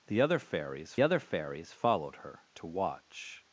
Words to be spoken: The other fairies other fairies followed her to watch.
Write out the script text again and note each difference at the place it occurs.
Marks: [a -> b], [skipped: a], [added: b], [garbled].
The other fairies other fairies followed her to watch.